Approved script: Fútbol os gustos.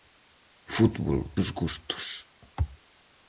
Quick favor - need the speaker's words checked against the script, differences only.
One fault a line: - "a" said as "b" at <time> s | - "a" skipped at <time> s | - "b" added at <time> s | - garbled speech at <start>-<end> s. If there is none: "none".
none